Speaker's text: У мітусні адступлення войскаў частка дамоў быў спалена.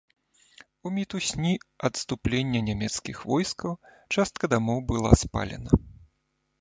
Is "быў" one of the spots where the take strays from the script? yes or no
yes